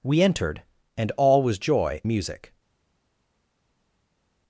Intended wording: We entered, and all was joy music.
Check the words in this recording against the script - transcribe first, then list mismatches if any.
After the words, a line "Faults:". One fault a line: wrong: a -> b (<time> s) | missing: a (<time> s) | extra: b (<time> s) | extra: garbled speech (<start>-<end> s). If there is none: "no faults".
We entered, and all was joy music.
Faults:
no faults